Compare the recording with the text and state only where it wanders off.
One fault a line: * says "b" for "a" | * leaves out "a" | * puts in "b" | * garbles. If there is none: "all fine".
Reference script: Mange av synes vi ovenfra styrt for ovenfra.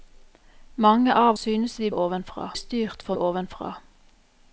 all fine